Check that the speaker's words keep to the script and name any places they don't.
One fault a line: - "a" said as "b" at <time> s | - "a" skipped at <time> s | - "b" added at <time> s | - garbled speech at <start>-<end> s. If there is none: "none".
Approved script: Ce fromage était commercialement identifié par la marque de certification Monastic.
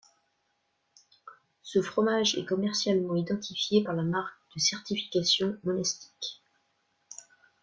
- "était" said as "est" at 2.3 s